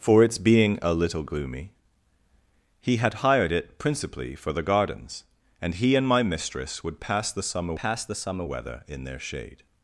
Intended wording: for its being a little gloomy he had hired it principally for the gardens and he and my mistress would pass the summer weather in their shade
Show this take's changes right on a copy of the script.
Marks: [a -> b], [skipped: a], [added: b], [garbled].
for its being a little gloomy he had hired it principally for the gardens and he and my mistress would pass the summer [added: pass the summer] weather in their shade